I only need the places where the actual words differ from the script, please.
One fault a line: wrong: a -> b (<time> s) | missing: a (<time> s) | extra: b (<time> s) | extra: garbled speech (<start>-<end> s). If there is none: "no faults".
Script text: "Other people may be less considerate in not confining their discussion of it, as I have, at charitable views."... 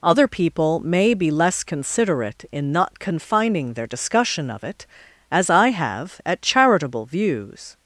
no faults